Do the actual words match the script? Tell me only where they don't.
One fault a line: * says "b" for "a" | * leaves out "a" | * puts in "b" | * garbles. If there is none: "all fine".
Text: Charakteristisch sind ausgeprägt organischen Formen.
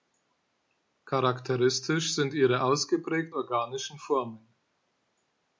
* puts in "ihre"